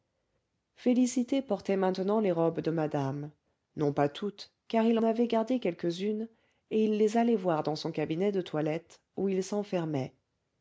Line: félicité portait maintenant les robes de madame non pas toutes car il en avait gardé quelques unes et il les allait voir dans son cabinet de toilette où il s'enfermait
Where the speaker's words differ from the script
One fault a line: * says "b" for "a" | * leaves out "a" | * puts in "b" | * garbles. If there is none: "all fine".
* leaves out "en"